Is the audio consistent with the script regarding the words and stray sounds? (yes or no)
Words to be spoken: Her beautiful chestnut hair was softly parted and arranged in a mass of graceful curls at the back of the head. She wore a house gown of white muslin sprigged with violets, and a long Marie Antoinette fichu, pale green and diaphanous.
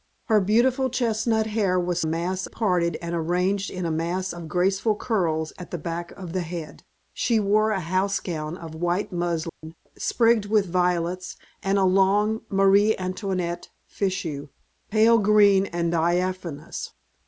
no